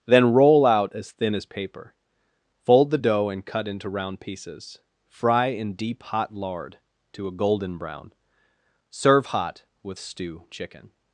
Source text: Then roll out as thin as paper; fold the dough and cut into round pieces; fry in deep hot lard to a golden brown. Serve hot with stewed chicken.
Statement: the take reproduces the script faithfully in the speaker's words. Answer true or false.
false